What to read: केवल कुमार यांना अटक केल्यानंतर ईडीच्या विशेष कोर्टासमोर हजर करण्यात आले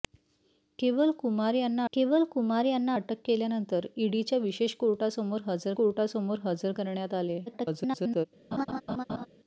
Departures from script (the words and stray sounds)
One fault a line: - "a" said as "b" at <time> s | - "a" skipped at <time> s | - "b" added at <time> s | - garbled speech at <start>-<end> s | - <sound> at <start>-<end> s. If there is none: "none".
- "केवल कुमार यांना" added at 1.9 s
- "कोर्टासमोर हजर" added at 5.7 s
- garbled speech at 7.5-8.3 s
- laugh at 8.5-9.3 s